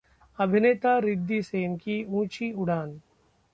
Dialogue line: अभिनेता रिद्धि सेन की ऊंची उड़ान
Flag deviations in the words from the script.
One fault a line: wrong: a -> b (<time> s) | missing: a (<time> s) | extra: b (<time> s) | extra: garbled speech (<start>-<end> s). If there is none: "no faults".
no faults